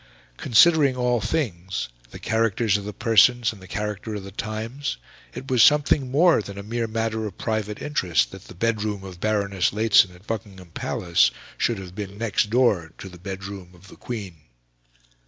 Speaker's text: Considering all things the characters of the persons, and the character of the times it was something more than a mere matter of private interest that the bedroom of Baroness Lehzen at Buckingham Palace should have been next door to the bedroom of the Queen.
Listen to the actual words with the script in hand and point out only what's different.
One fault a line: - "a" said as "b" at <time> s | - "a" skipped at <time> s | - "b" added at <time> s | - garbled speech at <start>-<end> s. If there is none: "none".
none